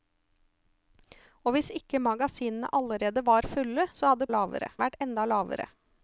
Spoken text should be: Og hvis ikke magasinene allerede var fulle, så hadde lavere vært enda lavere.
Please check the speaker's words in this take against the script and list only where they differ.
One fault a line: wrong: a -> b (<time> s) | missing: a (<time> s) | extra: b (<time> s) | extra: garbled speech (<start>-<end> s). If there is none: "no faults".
no faults